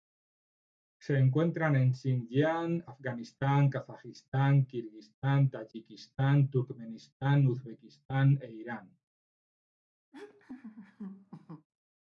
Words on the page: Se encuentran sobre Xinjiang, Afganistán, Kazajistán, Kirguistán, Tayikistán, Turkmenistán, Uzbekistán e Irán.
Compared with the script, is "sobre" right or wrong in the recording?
wrong